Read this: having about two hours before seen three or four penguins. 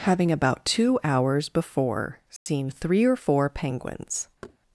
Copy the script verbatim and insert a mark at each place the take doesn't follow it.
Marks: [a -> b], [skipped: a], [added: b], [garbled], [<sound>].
having about two hours before seen [dropout] three or four penguins. [thud]